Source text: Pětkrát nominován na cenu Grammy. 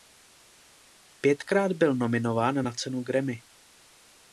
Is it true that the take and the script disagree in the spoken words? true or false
true